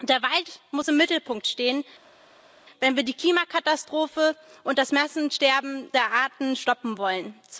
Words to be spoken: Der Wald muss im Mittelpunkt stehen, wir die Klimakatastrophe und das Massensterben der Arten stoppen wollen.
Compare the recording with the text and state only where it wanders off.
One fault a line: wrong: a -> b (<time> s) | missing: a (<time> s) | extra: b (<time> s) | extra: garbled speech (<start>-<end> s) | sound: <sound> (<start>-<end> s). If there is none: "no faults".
extra: wenn (2.8 s)